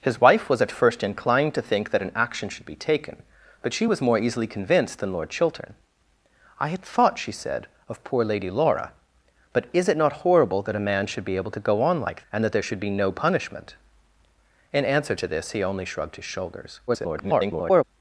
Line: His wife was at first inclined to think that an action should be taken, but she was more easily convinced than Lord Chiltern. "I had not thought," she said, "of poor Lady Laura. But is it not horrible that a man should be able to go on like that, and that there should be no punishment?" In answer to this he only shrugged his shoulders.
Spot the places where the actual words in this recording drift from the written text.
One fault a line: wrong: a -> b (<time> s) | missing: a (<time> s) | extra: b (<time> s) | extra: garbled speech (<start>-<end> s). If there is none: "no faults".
missing: not (6.9 s)
missing: that (12.2 s)
extra: garbled speech (16.9-17.8 s)